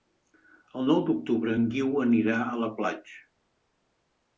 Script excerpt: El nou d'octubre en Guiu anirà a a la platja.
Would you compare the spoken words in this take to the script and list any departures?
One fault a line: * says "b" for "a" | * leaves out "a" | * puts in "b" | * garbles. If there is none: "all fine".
* leaves out "a"